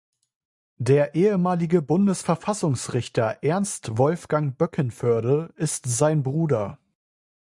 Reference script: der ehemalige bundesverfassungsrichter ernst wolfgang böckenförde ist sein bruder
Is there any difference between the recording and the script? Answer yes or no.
no